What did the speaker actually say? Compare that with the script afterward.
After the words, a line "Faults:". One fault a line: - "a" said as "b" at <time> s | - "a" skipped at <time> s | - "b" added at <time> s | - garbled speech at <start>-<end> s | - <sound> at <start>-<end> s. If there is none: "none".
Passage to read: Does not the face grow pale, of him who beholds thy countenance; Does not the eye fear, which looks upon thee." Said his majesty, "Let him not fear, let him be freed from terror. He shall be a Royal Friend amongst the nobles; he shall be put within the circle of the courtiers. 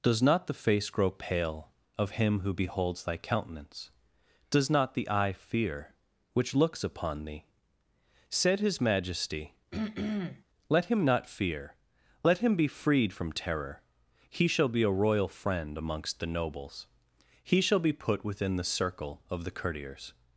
Does not the face grow pale, of him who beholds thy countenance; Does not the eye fear, which looks upon thee." Said his majesty, "Let him not fear, let him be freed from terror. He shall be a Royal Friend amongst the nobles; he shall be put within the circle of the courtiers.
Faults:
- throat clearing at 9.7-10.4 s